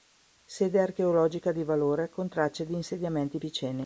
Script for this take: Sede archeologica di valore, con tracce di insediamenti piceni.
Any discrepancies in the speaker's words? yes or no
no